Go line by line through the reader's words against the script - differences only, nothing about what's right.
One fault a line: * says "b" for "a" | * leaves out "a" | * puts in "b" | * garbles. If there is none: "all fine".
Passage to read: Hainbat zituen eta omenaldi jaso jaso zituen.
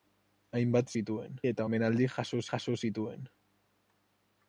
all fine